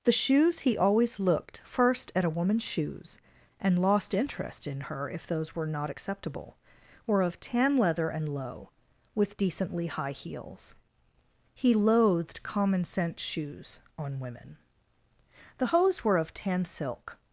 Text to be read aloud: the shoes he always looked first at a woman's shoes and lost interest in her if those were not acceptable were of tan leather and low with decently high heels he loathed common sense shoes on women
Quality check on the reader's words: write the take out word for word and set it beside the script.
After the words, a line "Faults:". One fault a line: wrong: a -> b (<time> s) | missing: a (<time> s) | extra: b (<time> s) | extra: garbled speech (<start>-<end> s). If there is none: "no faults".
the shoes he always looked first at a woman's shoes and lost interest in her if those were not acceptable were of tan leather and low with decently high heels he loathed common sense shoes on women the hose were of tan silk
Faults:
extra: the hose were of tan silk (15.6 s)